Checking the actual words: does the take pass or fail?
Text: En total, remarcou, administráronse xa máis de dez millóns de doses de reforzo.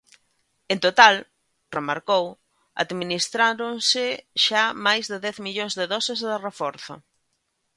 pass